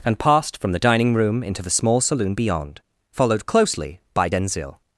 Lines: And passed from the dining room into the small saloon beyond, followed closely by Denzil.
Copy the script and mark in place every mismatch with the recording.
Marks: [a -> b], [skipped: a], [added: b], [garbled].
And passed from the dining room into the small saloon beyond, followed closely by Denzil.